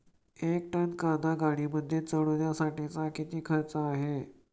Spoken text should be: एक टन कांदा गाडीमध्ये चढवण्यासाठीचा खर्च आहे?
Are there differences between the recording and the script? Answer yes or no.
yes